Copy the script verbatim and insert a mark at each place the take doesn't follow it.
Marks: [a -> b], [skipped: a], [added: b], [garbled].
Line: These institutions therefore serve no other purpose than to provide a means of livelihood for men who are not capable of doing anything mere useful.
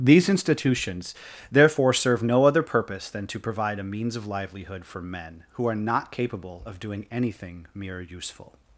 These institutions therefore serve no other purpose than to provide a means of livelihood for men who are not capable of doing anything mere useful.